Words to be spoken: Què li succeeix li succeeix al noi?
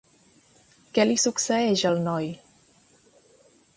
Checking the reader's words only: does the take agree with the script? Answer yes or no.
no